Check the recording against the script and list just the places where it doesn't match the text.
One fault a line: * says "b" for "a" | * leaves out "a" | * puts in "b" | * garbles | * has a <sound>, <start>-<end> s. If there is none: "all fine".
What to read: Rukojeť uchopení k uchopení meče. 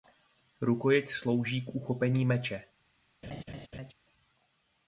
* says "slouží" for "uchopení"
* has a laugh, 3.2-3.9 s